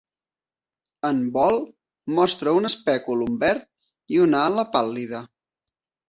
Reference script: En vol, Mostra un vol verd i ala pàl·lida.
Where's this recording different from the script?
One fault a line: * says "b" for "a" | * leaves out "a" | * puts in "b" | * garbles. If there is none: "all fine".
* says "espèculum" for "vol"
* puts in "una"